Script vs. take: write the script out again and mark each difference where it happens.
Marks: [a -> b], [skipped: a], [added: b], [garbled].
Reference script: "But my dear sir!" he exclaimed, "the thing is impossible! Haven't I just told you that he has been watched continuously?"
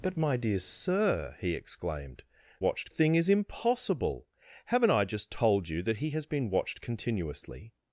"But my dear sir!" he exclaimed, ["the -> watched] thing is impossible! Haven't I just told you that he has been watched continuously?"